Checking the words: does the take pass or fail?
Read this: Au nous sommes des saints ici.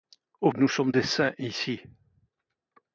pass